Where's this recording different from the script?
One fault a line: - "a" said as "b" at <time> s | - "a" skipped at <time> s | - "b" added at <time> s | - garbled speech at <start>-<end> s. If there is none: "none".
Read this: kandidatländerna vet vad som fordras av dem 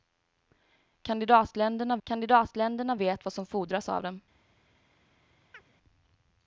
- "kandidatländerna" added at 2.0 s